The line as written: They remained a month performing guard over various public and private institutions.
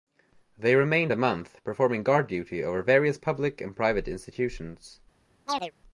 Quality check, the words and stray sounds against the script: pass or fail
fail